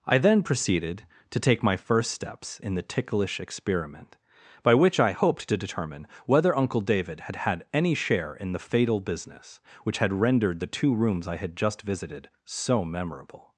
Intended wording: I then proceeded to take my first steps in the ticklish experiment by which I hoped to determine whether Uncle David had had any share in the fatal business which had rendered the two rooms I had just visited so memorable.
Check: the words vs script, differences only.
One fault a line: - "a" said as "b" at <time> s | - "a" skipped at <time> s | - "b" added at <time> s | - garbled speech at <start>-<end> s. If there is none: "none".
none